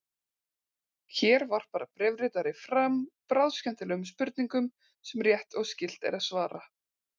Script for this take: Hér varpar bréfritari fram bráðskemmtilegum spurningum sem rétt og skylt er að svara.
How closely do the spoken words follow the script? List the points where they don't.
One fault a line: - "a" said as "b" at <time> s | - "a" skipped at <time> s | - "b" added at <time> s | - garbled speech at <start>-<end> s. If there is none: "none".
none